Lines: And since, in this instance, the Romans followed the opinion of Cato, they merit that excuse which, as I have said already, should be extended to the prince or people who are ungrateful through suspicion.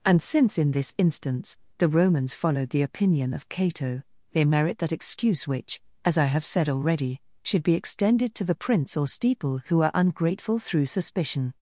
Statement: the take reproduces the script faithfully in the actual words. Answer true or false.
false